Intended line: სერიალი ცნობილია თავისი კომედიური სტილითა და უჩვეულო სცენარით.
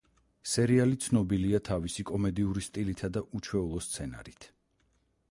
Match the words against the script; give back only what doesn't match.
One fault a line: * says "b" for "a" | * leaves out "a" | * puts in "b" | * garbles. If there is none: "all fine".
all fine